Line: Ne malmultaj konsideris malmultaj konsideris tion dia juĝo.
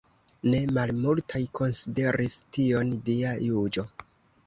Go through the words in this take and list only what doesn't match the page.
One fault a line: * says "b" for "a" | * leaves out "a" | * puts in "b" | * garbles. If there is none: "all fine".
* leaves out "malmultaj konsideris"